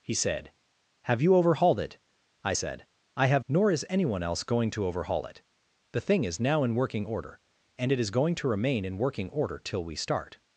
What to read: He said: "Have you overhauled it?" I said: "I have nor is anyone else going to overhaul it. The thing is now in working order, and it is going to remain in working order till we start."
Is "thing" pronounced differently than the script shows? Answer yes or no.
no